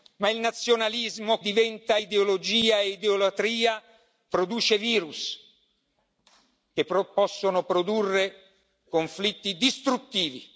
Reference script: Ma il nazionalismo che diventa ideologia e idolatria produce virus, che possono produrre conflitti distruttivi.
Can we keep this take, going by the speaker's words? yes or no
no